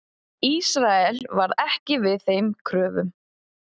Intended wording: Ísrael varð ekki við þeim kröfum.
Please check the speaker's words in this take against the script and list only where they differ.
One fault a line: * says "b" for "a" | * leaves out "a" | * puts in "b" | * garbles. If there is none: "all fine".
all fine